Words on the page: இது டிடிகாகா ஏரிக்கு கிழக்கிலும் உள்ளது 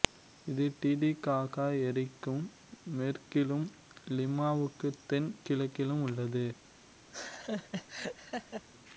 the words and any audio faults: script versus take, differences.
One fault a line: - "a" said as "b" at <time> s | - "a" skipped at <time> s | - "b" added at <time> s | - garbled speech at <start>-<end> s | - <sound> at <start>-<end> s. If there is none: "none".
- "மேற்கிலும் லிமாவுக்கு தென்" added at 2.9 s
- laugh at 7.1-8.7 s